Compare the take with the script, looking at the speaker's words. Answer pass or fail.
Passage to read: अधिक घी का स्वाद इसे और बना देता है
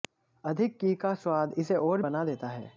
pass